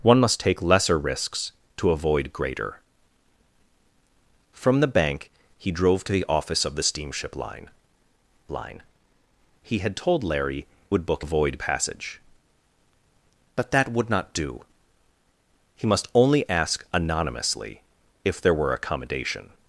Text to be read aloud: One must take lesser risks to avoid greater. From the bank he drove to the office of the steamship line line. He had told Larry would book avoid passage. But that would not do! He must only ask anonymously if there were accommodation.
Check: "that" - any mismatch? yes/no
no